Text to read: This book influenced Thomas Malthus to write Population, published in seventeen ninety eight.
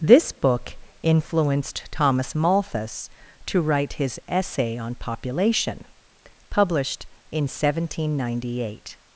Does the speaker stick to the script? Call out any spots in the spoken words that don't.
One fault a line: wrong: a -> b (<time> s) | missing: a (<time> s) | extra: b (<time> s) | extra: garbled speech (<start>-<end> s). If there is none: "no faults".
extra: his Essay on (3.9 s)